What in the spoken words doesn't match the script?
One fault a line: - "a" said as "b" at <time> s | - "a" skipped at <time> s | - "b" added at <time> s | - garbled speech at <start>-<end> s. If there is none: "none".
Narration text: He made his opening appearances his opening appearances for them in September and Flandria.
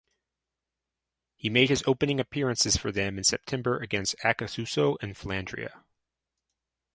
- "his opening appearances" skipped at 2.8 s
- "against Acassuso" added at 3.8 s